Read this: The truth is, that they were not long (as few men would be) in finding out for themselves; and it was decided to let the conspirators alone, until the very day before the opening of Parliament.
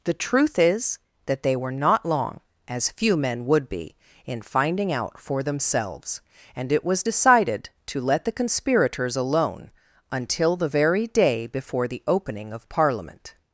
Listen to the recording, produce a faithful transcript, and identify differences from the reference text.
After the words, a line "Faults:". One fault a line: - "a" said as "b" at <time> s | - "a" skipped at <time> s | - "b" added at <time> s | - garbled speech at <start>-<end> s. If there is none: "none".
The truth is, that they were not long (as few men would be) in finding out for themselves; and it was decided to let the conspirators alone, until the very day before the opening of Parliament.
Faults:
none